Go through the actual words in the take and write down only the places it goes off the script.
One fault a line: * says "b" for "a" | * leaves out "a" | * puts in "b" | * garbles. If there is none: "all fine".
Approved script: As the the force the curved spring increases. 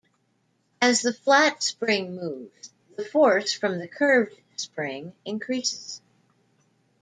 * puts in "flat spring moves"
* puts in "from"